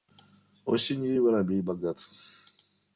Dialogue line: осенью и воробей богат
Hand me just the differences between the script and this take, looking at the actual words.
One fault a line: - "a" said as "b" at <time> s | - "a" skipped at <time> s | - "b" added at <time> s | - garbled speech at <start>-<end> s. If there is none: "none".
none